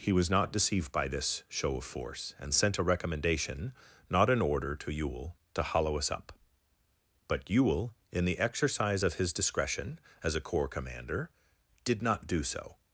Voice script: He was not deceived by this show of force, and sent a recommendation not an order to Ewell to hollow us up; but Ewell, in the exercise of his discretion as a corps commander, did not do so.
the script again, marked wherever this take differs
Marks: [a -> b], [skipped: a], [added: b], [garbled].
He was not deceived by this show of force, and sent a recommendation not an order to Ewell to hollow us up; but Ewell, in the exercise of his discretion as a corps commander, did not do so.